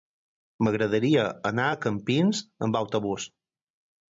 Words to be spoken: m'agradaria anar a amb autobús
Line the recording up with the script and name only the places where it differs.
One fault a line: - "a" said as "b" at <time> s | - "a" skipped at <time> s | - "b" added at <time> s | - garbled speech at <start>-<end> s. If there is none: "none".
- "campins" added at 1.9 s